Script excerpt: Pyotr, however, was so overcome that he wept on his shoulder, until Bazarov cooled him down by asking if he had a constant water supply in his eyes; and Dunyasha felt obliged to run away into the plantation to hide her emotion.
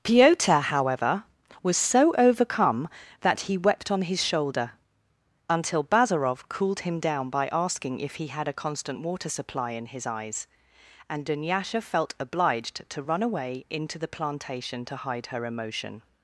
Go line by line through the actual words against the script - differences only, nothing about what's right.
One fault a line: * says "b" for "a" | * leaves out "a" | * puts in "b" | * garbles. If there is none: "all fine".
all fine